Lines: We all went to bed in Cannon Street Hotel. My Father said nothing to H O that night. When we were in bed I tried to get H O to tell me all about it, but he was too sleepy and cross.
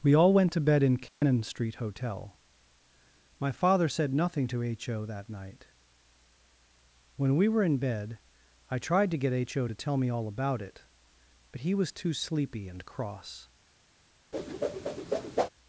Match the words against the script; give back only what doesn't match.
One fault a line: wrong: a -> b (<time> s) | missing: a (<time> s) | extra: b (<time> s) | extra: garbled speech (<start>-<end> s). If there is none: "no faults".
no faults